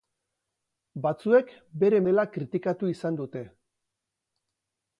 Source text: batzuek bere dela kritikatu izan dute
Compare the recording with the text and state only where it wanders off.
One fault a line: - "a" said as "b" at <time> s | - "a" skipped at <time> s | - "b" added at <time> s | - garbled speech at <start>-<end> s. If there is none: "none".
none